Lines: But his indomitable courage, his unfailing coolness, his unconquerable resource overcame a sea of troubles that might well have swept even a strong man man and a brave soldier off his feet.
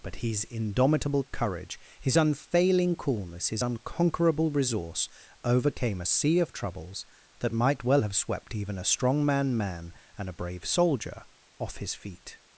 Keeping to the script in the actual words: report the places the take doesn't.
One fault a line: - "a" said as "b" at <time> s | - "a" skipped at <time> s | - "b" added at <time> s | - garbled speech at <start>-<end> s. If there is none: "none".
none